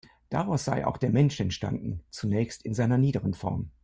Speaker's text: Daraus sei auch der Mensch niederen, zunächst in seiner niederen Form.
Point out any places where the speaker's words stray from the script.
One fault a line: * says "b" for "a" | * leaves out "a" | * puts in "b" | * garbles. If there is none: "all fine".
* says "entstanden" for "niederen"